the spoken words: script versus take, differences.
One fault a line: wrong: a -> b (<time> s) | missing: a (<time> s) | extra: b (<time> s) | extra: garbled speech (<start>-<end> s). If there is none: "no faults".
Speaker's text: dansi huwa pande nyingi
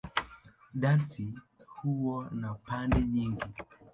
extra: na (2.3 s)